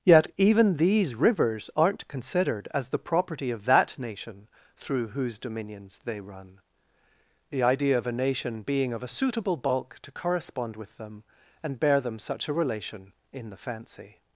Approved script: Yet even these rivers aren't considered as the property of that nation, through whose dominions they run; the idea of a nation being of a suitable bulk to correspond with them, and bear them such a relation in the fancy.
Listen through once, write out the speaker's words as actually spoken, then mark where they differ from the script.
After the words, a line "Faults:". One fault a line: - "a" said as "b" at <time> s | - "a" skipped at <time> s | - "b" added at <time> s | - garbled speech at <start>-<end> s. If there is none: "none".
Yet even these rivers aren't considered as the property of that nation, through whose dominions they run; the idea of a nation being of a suitable bulk to correspond with them, and bear them such a relation in the fancy.
Faults:
none